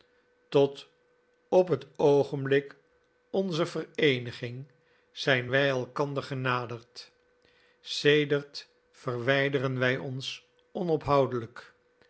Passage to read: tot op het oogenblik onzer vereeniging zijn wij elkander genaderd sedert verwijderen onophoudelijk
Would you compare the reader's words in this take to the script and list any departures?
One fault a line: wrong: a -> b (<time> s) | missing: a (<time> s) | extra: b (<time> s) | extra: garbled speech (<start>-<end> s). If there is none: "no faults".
extra: wij ons (9.8 s)